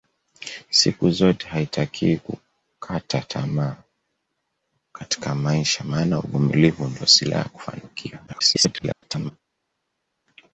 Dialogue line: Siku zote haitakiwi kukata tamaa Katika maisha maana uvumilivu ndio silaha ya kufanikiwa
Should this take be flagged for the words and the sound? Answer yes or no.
yes